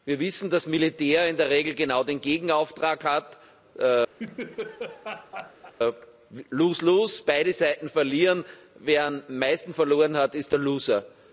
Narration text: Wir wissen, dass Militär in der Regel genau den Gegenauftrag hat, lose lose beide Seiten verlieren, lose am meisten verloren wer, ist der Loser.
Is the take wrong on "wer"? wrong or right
wrong